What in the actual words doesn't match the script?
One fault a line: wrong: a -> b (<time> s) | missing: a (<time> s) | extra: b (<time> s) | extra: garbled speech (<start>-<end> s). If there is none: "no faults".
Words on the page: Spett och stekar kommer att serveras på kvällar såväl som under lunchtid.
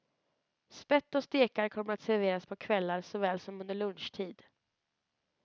no faults